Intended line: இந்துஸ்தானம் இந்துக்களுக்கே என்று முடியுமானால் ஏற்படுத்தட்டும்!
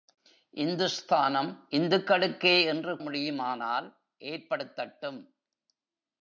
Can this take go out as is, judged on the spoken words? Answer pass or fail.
pass